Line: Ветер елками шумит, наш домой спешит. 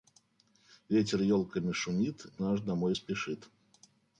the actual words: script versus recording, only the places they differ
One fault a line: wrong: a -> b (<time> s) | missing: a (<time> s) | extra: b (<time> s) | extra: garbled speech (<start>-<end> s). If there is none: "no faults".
no faults